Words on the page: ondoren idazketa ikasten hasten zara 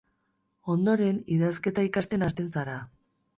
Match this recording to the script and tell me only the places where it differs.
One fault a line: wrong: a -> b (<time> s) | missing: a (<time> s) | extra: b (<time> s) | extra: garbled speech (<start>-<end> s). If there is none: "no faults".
no faults